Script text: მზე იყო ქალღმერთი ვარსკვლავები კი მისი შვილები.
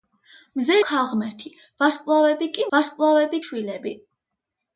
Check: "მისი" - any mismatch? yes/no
yes